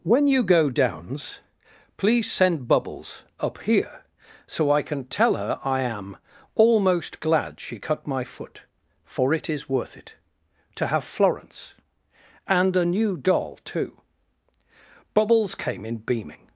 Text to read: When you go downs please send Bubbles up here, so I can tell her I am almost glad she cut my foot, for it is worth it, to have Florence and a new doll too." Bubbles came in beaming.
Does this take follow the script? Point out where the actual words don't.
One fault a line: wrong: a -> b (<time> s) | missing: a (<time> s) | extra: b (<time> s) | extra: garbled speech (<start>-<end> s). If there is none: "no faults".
no faults